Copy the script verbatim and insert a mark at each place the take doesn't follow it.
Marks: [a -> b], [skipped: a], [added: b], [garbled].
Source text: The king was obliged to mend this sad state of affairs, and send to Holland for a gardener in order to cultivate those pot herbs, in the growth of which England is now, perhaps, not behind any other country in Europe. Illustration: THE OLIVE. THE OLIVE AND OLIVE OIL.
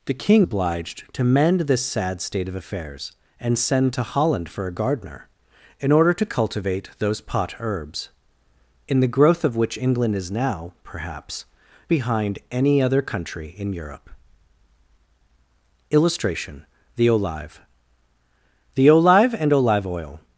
The king [skipped: was] obliged to mend this sad state of affairs, and send to Holland for a gardener in order to cultivate those pot herbs, in the growth of which England is now, perhaps, [skipped: not] behind any other country in Europe. Illustration: THE OLIVE. THE OLIVE AND OLIVE OIL.